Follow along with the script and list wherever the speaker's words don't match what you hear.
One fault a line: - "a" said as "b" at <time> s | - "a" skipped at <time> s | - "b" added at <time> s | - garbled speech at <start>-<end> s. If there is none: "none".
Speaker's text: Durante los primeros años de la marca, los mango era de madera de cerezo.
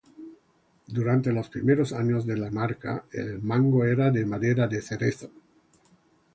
- "los" said as "el" at 3.1 s